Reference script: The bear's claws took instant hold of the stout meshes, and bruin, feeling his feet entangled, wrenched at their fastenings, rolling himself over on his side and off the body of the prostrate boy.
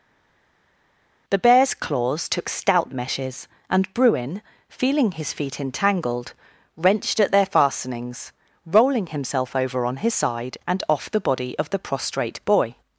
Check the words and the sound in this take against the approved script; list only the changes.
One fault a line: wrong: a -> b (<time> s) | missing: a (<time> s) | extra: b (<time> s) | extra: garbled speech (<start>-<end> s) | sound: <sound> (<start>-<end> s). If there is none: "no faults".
missing: instant hold of the (2.5 s)